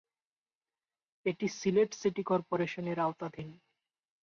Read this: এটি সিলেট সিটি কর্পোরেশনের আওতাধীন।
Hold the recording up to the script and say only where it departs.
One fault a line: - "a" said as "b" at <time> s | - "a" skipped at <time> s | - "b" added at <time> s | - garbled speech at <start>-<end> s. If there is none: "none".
none